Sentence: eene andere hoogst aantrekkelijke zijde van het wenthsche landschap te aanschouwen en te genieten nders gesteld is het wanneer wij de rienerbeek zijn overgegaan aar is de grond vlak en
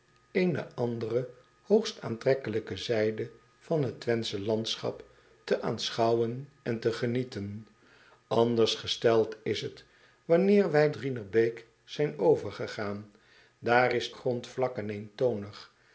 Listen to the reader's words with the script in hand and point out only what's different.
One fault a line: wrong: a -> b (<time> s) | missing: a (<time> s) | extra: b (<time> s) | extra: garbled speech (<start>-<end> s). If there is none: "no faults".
missing: de (10.9 s)
missing: de (14.1 s)